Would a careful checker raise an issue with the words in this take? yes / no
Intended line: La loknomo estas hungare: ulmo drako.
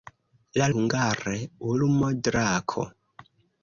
yes